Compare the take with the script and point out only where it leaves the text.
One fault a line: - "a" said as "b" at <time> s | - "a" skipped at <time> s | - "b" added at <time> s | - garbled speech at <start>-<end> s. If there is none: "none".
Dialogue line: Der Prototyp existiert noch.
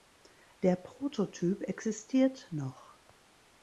none